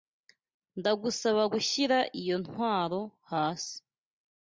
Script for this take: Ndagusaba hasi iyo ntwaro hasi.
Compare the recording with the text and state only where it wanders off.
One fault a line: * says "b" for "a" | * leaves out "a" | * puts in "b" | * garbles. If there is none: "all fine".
* says "gushyira" for "hasi"